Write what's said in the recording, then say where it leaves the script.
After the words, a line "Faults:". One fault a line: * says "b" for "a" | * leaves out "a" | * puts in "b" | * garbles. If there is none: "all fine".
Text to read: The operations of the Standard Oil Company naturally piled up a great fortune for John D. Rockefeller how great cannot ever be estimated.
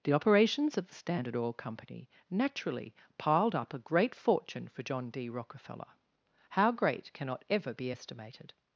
The operations of the Standard Oil Company naturally piled up a great fortune for John D. Rockefeller how great cannot ever be estimated.
Faults:
all fine